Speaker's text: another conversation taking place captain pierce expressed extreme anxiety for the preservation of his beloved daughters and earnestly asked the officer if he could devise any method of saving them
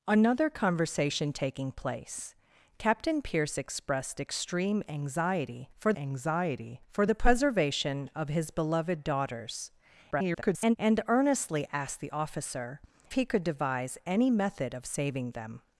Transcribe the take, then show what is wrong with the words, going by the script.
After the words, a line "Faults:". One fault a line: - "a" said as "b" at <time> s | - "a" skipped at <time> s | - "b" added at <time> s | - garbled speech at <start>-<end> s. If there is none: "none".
another conversation taking place captain pierce expressed extreme anxiety for anxiety for the preservation of his beloved daughters [garbled] and earnestly asked the officer he could devise any method of saving them
Faults:
- "anxiety for" added at 6.0 s
- garbled speech at 10.1-10.8 s
- "if" skipped at 12.8 s